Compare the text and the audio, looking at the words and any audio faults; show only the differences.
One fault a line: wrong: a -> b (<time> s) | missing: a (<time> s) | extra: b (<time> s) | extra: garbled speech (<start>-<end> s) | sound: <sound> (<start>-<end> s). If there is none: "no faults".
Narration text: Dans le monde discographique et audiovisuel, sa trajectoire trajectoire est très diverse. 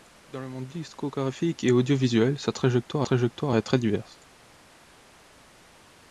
no faults